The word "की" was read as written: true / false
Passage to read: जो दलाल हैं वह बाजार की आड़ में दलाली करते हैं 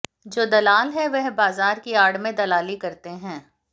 true